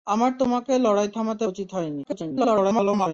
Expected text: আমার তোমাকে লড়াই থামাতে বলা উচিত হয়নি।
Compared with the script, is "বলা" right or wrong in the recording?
wrong